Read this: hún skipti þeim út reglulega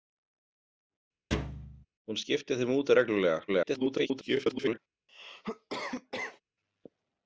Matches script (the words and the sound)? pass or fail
fail